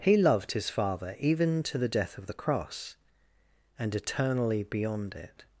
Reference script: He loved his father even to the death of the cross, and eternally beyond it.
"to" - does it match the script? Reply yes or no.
yes